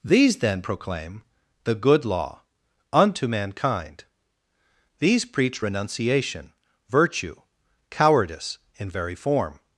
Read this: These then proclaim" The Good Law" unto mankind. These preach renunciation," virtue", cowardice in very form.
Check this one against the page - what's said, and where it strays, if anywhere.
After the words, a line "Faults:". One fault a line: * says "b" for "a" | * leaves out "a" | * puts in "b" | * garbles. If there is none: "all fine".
These then proclaim" The Good Law" unto mankind. These preach renunciation," virtue", cowardice in very form.
Faults:
all fine